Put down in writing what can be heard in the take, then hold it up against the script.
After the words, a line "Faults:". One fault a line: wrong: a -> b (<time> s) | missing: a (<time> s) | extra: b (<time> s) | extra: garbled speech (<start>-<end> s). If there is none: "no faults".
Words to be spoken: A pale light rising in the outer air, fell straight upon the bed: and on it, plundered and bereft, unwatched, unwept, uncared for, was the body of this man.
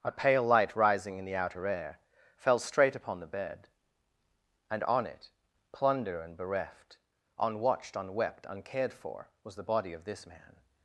A pale light rising in the outer air, fell straight upon the bed: and on it, plunder and bereft, unwatched, unwept, uncared for, was the body of this man.
Faults:
wrong: plundered -> plunder (5.7 s)